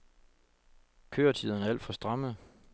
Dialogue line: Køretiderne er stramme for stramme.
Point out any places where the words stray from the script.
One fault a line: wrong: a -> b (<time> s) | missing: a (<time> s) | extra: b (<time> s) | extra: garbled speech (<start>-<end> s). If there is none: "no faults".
wrong: stramme -> alt (1.7 s)